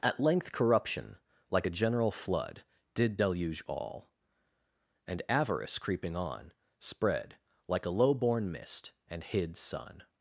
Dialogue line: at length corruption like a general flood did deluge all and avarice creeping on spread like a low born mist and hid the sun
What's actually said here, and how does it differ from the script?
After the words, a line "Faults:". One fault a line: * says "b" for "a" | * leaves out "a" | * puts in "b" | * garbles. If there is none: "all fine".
at length corruption like a general flood did deluge all and avarice creeping on spread like a low born mist and hid sun
Faults:
* leaves out "the"